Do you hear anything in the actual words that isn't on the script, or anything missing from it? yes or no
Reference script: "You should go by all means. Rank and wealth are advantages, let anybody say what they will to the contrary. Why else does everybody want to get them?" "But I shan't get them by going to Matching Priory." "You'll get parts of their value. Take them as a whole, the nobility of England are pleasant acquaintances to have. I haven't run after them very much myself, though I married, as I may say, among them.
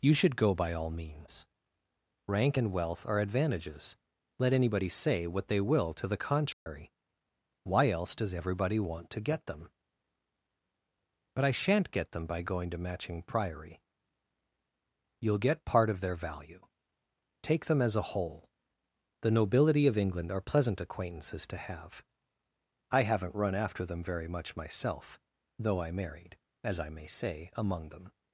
yes